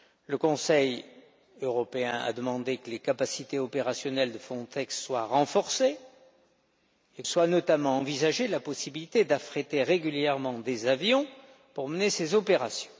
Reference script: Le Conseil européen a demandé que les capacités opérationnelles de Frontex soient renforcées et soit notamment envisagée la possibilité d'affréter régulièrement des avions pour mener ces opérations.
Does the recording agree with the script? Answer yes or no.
yes